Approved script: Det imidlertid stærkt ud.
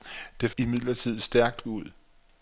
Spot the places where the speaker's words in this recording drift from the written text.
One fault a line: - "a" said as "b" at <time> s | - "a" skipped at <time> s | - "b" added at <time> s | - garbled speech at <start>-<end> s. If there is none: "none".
none